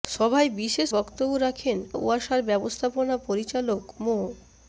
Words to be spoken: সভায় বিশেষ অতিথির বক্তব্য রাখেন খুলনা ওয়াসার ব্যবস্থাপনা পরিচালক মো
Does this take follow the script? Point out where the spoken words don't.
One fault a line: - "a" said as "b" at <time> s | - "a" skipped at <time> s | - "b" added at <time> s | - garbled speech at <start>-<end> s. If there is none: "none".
- "অতিথির" skipped at 0.9 s
- "খুলনা" skipped at 1.8 s